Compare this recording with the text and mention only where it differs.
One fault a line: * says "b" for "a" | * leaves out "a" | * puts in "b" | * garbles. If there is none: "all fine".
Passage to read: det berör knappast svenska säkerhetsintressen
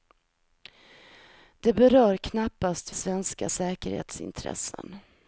all fine